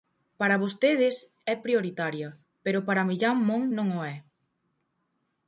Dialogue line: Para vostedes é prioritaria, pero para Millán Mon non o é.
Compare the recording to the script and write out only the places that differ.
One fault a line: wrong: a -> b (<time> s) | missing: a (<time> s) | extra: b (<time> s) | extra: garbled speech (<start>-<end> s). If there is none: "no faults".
no faults